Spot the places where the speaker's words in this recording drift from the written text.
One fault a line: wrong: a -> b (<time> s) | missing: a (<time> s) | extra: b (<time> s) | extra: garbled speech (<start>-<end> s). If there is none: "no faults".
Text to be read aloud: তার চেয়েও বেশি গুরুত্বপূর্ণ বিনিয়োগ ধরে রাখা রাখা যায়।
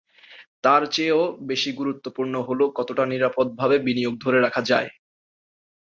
extra: হলো কতটা নিরাপদভাবে (2.5 s)
missing: রাখা (4.6 s)